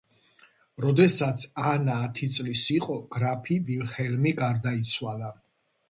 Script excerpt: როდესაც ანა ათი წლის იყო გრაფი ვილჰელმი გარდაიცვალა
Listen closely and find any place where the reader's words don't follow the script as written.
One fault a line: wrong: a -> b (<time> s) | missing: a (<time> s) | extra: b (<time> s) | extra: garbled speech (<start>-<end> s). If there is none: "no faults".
no faults